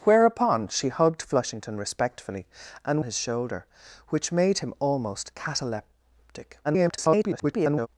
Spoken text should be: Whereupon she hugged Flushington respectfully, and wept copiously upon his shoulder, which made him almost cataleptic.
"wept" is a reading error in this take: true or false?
true